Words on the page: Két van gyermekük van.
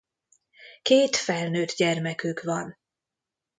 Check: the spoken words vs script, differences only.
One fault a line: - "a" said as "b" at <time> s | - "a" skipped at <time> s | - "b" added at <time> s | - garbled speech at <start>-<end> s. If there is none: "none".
- "van" said as "felnőtt" at 1.1 s